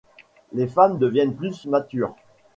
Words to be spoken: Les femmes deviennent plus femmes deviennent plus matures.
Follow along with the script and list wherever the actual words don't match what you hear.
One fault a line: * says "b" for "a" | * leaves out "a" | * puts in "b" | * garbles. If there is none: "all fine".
* leaves out "femmes deviennent plus"